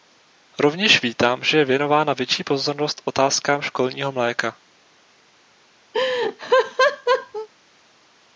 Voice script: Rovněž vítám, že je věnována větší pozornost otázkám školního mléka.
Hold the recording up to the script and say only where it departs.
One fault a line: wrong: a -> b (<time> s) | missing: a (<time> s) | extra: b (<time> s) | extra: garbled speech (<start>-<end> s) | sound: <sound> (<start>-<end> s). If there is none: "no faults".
sound: laugh (5.9-7.5 s)